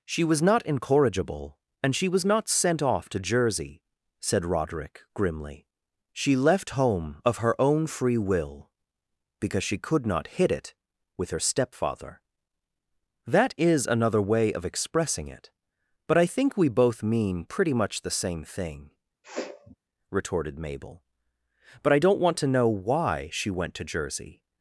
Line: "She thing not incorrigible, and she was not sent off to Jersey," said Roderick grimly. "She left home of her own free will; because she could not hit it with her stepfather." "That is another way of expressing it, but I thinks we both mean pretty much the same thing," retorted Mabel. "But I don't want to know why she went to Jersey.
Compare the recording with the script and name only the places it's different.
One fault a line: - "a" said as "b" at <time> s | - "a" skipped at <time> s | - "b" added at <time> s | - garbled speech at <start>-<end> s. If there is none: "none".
- "thing" said as "was" at 0.2 s
- "thinks" said as "think" at 16.2 s